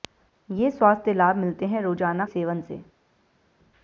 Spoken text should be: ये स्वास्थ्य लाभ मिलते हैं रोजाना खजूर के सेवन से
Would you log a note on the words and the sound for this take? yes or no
yes